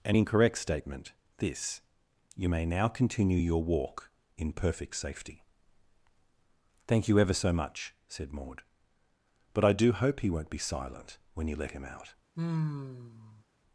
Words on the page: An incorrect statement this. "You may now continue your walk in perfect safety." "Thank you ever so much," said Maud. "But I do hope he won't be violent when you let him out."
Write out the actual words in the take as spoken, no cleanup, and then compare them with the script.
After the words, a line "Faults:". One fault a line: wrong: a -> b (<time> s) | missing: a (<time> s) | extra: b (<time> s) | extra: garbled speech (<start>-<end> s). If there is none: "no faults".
An incorrect statement this. "You may now continue your walk in perfect safety." "Thank you ever so much," said Maud. "But I do hope he won't be silent when you let him out."
Faults:
wrong: violent -> silent (10.6 s)